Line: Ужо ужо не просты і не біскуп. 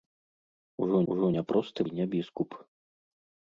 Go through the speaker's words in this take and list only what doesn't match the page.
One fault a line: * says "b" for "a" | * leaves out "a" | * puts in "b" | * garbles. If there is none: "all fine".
all fine